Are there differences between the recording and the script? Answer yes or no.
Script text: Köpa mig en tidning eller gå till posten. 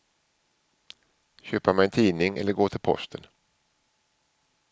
no